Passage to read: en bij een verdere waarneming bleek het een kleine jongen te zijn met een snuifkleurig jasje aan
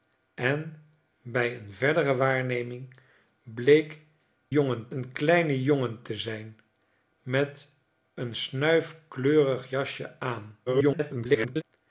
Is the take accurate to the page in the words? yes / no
no